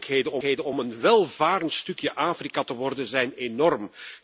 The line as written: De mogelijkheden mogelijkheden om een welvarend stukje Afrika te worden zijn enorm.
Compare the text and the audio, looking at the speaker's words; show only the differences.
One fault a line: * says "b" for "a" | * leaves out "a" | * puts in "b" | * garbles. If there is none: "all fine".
all fine